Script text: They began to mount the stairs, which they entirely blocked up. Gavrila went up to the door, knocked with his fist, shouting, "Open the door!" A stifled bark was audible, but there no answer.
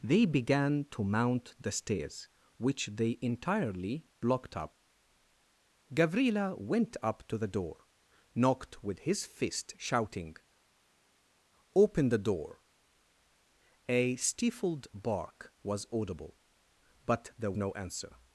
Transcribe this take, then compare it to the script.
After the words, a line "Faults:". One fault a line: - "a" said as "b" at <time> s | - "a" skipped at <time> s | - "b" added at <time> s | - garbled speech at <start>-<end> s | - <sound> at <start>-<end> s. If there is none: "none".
They began to mount the stairs, which they entirely blocked up. Gavrila went up to the door, knocked with his fist, shouting, "Open the door!" A stifled bark was audible, but there no answer.
Faults:
none